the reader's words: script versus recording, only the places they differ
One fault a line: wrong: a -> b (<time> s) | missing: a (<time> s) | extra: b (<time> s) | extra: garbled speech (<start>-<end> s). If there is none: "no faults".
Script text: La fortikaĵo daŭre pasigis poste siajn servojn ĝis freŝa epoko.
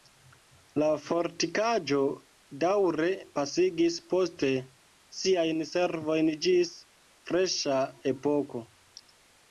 no faults